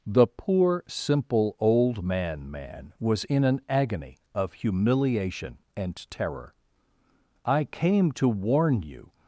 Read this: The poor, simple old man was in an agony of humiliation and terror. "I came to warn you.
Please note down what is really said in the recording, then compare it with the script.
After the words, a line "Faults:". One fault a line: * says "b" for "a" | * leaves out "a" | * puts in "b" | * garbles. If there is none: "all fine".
The poor, simple old man man was in an agony of humiliation and terror. "I came to warn you.
Faults:
* puts in "man"